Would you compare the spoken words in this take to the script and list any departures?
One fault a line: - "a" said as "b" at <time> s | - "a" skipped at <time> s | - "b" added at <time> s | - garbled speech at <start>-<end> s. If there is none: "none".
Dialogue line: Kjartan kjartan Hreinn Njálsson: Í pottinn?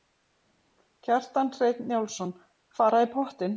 - "kjartan" skipped at 1.5 s
- "Fara" added at 2.8 s